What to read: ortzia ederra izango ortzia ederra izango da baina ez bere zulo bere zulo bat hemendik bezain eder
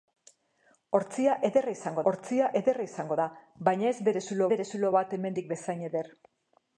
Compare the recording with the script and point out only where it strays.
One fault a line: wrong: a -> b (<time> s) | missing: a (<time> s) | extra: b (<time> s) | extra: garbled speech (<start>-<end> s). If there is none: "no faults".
no faults